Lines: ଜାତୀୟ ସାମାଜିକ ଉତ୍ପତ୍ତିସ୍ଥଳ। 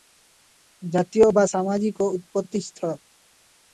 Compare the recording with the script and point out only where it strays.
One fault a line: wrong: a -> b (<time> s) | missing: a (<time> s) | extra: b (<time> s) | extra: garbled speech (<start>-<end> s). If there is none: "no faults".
extra: ବା (1.3 s)